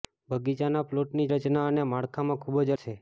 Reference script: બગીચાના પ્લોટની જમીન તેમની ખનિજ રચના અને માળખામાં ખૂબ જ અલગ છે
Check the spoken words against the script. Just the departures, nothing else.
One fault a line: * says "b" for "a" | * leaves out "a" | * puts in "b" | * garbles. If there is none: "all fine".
* leaves out "જમીન તેમની ખનિજ"
* leaves out "અલગ"